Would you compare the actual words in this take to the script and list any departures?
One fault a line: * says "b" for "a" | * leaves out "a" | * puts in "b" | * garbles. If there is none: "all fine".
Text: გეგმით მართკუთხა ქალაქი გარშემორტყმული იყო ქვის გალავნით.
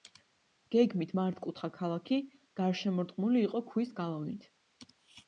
all fine